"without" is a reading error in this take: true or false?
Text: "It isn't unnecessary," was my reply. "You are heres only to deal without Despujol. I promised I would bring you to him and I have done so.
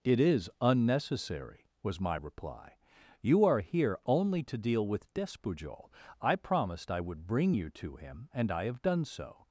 true